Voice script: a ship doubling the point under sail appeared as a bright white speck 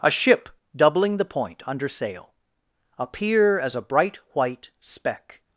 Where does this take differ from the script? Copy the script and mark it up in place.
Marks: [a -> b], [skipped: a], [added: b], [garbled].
a ship doubling the point under sail [appeared -> appear] as a bright white speck